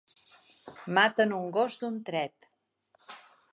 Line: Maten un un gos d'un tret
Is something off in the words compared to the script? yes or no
yes